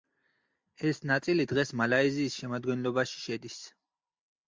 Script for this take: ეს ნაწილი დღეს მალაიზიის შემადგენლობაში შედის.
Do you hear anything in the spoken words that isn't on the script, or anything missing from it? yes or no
no